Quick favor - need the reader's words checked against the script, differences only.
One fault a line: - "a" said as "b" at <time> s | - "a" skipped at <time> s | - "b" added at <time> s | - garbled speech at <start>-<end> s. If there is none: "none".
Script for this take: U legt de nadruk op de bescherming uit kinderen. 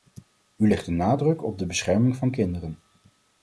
- "uit" said as "van" at 2.2 s